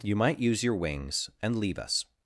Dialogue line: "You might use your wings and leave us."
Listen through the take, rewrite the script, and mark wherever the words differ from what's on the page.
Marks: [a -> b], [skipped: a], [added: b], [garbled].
"You might use your wings and leave us."